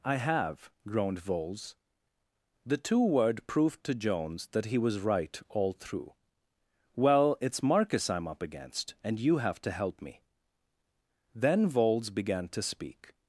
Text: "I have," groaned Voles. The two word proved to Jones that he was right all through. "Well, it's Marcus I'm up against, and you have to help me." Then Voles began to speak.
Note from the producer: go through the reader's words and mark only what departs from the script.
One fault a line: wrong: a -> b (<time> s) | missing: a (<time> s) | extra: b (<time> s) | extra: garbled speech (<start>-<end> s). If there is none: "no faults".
no faults